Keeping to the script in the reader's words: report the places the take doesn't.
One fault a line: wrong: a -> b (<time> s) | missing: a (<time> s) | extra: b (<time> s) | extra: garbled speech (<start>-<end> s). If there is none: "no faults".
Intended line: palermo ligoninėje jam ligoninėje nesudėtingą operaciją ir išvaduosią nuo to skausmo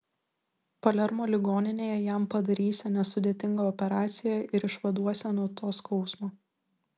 wrong: ligoninėje -> padarysią (2.4 s)